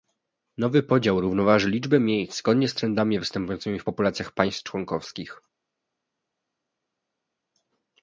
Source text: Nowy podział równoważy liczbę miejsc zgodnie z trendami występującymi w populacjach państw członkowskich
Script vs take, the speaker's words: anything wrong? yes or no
no